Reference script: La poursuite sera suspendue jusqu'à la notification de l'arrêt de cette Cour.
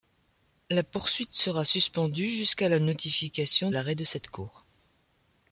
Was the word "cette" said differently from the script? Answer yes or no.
no